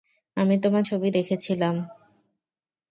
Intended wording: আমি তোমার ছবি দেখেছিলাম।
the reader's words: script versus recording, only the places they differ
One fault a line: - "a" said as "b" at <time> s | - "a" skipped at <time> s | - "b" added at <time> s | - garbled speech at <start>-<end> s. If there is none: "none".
none